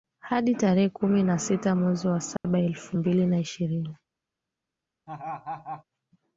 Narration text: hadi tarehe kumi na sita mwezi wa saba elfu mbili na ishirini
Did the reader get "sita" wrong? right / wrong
right